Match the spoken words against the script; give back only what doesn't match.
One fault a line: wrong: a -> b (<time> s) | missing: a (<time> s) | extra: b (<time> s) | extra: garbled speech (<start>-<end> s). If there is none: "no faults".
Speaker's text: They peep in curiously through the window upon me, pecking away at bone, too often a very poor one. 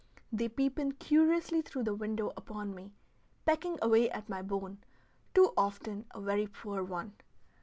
extra: my (4.3 s)